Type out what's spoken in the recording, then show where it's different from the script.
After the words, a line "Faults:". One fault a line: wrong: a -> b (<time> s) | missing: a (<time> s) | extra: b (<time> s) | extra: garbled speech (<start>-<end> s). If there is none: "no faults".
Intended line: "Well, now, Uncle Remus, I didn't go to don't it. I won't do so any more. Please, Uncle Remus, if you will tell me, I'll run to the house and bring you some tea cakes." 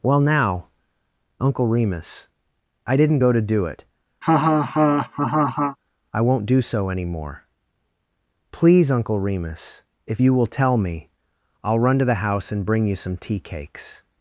"Well, now, Uncle Remus, I didn't go to do it. I won't do so any more. Please, Uncle Remus, if you will tell me, I'll run to the house and bring you some tea cakes."
Faults:
wrong: don't -> do (3.4 s)